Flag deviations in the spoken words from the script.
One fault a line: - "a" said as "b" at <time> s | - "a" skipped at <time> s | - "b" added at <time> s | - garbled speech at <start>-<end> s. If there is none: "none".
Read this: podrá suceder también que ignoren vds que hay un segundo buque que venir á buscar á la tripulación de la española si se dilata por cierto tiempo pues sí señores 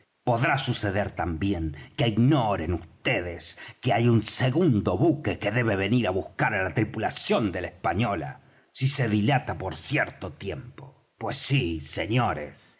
- "debe" added at 5.5 s